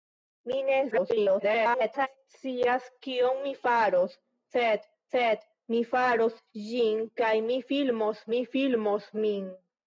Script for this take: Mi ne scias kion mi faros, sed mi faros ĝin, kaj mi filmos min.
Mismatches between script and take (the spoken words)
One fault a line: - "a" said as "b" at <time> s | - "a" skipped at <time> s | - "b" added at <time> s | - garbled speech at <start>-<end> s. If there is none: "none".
- garbled speech at 0.9-2.1 s
- "sed" added at 5.2 s
- "mi filmos" added at 8.4 s